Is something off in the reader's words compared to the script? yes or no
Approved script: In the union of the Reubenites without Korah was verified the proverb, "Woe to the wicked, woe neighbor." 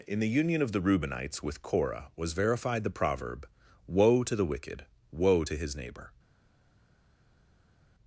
yes